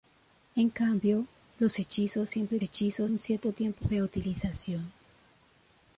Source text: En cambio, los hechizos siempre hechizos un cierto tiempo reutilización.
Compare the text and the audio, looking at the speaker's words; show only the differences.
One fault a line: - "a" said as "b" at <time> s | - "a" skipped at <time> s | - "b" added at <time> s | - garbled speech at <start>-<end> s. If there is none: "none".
none